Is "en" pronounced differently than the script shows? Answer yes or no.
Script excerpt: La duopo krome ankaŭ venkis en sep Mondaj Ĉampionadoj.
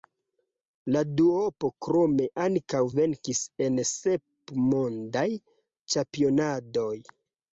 no